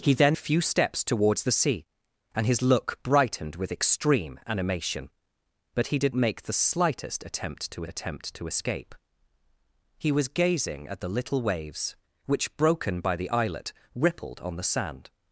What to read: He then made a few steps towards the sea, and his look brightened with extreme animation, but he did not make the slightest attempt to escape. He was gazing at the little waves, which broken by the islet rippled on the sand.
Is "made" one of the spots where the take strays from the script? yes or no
yes